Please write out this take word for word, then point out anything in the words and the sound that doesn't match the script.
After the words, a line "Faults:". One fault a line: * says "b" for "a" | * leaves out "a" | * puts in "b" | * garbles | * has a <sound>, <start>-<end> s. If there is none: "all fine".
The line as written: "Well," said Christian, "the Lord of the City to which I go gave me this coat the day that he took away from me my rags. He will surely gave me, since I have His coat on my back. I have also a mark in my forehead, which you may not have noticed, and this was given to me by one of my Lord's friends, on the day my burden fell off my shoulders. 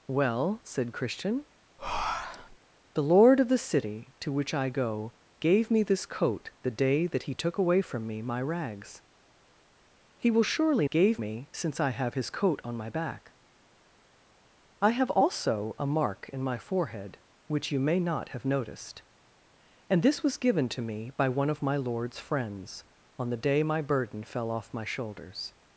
"Well," said Christian, "the Lord of the City to which I go gave me this coat the day that he took away from me my rags. He will surely gave me, since I have His coat on my back. I have also a mark in my forehead, which you may not have noticed, and this was given to me by one of my Lord's friends, on the day my burden fell off my shoulders.
Faults:
* has a breath, 1.8-2.6 s